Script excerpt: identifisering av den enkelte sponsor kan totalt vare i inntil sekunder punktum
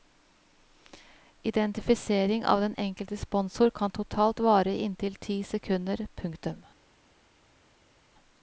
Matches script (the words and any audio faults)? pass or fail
fail